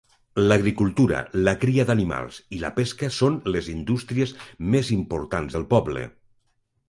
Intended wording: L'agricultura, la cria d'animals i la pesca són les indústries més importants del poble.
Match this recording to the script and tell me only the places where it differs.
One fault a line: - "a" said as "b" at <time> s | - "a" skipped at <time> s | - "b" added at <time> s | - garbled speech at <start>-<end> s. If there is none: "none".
none